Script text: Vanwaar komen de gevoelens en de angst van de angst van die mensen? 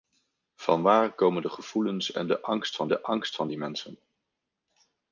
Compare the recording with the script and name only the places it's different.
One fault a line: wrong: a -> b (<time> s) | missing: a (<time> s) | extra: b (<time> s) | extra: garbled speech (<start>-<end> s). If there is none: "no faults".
no faults